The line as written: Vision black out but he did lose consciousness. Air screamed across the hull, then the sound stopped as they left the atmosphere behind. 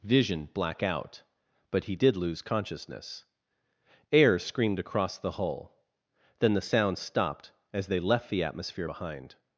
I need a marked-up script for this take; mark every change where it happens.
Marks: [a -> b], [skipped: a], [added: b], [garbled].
Vision black out but he did lose consciousness. Air screamed across the hull, then the sound stopped as they left the atmosphere behind.